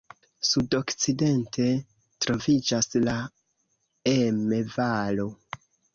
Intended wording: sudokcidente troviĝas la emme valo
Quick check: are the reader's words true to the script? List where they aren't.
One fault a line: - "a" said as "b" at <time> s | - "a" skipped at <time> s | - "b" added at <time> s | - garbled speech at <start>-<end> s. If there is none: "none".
none